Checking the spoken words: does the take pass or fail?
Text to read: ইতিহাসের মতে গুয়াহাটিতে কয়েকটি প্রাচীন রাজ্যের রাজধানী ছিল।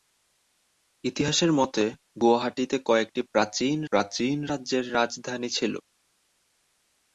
fail